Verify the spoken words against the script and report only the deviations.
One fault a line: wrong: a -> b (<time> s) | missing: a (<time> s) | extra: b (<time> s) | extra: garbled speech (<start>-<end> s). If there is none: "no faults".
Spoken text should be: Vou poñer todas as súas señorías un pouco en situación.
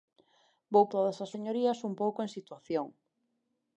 missing: poñer (0.8 s)
missing: súas (1.3 s)